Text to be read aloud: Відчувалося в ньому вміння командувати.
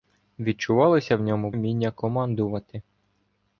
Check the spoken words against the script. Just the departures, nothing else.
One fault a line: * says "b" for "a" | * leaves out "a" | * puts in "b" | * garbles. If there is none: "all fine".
all fine